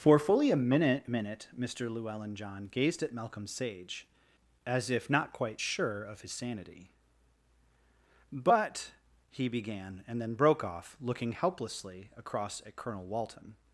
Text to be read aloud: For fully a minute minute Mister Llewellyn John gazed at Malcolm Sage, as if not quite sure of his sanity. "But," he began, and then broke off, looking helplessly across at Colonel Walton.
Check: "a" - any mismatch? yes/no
no